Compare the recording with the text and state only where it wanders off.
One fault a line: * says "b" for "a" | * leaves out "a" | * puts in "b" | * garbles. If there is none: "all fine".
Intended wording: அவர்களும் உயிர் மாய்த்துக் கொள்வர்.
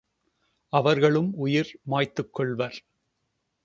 all fine